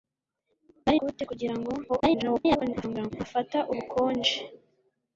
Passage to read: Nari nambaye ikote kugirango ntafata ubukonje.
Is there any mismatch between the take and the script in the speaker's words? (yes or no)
yes